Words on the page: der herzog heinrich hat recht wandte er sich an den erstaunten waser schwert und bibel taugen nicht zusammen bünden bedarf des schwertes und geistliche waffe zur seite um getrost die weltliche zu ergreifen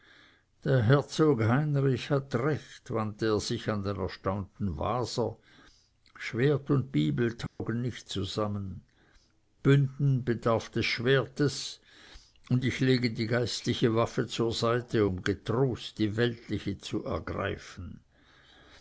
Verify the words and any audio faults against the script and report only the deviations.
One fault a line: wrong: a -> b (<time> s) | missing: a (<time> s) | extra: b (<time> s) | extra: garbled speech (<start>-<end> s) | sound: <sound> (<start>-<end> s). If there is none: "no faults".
sound: dropout (7.5-7.6 s)
extra: ich lege die (12.6 s)